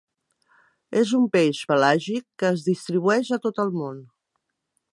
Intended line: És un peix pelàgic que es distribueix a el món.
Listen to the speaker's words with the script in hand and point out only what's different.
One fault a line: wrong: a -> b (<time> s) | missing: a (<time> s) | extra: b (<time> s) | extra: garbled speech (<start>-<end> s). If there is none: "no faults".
extra: tot (3.5 s)